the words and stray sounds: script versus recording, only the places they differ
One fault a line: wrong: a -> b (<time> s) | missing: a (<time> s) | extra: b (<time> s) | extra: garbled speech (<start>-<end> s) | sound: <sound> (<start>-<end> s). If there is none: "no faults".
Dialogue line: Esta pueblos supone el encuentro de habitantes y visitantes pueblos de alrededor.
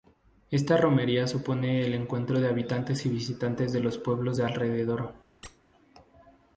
wrong: pueblos -> romería (0.8 s)
extra: de los (3.7 s)
sound: squeak (5.4-5.6 s)